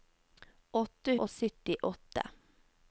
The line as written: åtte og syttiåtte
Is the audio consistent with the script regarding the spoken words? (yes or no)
yes